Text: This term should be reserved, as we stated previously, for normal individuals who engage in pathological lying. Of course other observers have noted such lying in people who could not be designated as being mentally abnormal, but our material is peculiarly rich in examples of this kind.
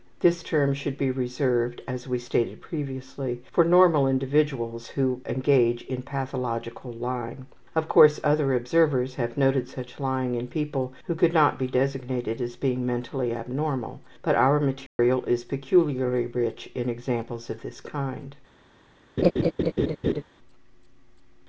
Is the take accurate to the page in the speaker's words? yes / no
yes